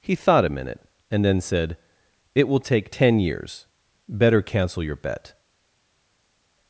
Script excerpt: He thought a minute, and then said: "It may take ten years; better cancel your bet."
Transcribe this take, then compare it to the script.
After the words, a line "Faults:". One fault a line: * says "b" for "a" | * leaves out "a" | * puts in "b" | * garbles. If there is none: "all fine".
He thought a minute, and then said: "It will take ten years; better cancel your bet."
Faults:
* says "will" for "may"